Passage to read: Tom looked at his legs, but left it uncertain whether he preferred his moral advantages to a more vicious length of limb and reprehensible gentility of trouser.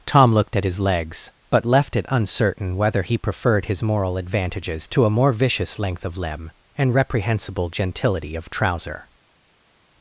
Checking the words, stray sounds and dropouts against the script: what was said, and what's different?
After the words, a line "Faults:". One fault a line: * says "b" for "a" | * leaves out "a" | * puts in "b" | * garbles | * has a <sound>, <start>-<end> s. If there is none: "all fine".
Tom looked at his legs, but left it uncertain whether he preferred his moral advantages to a more vicious length of limb and reprehensible gentility of trouser.
Faults:
all fine